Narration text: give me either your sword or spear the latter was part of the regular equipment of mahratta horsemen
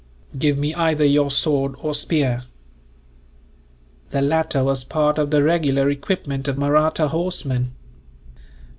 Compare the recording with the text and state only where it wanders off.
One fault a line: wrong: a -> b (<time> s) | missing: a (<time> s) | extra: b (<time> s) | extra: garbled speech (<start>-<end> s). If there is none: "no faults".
no faults